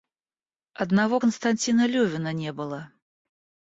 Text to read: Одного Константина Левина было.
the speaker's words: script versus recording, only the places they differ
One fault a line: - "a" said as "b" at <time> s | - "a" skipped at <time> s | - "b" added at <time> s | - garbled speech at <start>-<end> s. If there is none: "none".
- "не" added at 2.3 s